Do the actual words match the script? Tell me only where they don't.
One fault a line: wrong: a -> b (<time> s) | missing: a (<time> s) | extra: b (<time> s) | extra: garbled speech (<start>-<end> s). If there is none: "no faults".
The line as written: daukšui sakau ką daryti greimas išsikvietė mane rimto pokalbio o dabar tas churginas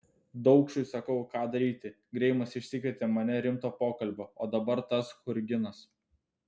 no faults